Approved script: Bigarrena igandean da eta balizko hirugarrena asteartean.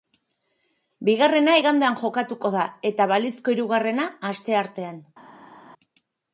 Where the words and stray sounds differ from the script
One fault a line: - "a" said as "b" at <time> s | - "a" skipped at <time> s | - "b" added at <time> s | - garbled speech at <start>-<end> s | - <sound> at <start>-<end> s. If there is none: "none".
- "jokatuko" added at 2.1 s